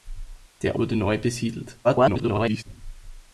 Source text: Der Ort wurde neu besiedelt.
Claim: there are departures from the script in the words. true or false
true